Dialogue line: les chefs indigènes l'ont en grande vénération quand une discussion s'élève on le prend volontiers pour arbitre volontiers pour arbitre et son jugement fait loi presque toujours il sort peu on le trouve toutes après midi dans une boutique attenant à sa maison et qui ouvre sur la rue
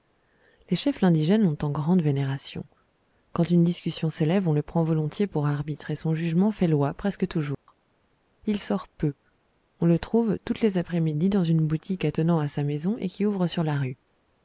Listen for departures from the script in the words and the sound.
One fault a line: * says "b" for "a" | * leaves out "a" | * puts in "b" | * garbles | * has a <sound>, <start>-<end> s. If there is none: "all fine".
* leaves out "volontiers pour arbitre"
* has a dropout, 7.5-7.7 s
* puts in "les"